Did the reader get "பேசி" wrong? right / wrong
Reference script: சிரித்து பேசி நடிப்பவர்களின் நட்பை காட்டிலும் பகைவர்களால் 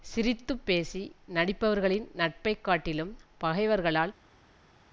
right